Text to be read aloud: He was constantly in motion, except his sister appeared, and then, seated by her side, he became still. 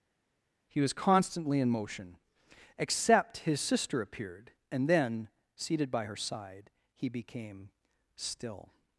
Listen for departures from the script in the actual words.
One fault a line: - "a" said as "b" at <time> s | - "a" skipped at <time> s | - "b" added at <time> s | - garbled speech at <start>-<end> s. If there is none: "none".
none